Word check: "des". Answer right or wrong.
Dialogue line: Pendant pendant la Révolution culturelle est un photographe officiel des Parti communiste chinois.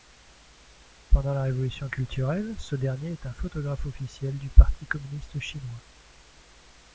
wrong